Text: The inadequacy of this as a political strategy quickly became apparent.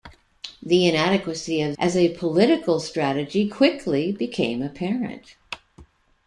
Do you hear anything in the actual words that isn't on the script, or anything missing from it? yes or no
yes